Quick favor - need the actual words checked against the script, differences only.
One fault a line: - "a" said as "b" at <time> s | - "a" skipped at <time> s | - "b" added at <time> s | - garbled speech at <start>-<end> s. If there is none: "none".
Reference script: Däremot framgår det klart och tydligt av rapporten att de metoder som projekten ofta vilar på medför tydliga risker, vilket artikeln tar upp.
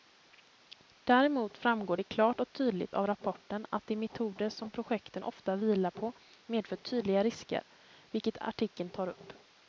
none